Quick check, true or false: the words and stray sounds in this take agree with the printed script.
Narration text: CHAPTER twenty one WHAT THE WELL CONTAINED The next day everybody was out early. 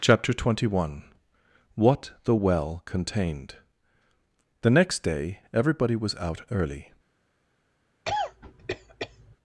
false